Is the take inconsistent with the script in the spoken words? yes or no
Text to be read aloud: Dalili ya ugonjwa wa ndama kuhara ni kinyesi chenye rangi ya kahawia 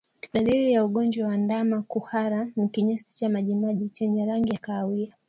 yes